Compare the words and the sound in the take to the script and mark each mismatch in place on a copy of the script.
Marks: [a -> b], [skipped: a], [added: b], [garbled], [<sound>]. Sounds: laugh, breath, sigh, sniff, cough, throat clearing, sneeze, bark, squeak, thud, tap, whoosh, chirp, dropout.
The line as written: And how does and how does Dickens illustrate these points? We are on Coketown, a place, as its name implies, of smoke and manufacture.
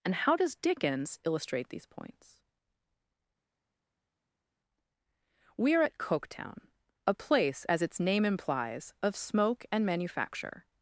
And how does [skipped: and how does] Dickens illustrate these points? We are [on -> at] Coketown, a place, as its name implies, of smoke and manufacture.